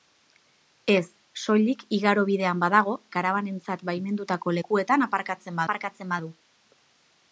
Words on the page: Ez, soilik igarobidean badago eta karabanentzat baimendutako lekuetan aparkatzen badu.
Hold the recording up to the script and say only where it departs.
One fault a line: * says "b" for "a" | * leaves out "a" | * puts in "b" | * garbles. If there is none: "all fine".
* leaves out "eta"
* puts in "aparkatzen"